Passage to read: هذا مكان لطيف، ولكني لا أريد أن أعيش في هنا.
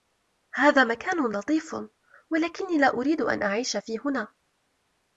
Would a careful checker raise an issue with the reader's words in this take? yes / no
no